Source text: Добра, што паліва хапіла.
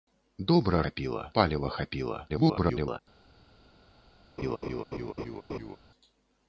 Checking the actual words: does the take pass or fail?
fail